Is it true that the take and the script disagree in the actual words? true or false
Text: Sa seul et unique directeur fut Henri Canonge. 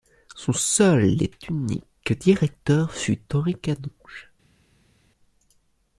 true